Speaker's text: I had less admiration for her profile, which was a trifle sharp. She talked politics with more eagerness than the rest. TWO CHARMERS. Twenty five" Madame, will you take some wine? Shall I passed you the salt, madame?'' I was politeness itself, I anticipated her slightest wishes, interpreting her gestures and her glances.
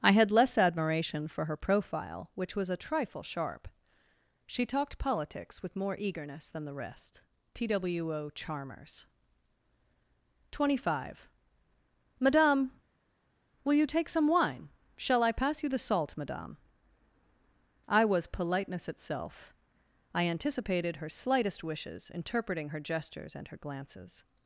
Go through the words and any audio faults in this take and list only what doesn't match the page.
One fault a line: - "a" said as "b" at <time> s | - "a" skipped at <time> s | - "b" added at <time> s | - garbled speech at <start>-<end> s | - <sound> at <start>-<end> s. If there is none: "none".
- "passed" said as "pass" at 15.3 s